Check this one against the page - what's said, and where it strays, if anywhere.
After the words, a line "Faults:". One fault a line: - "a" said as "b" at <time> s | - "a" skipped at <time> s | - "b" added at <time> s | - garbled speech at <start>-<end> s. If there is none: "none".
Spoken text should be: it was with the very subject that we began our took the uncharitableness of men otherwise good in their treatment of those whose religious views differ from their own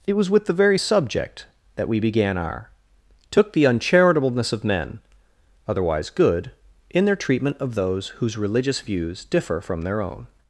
it was with the very subject that we began our took the uncharitableness of men otherwise good in their treatment of those whose religious views differ from their own
Faults:
none